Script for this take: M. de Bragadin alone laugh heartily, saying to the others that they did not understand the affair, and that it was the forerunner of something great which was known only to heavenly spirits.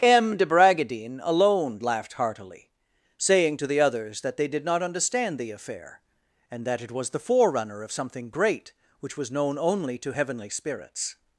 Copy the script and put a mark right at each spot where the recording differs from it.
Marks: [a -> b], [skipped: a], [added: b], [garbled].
M. de Bragadin alone [laugh -> laughed] heartily, saying to the others that they did not understand the affair, and that it was the forerunner of something great which was known only to heavenly spirits.